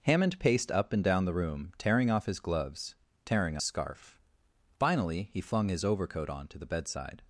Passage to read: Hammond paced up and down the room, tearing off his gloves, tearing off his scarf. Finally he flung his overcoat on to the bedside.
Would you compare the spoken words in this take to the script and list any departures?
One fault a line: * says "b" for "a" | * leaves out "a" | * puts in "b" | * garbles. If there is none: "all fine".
* leaves out "off his"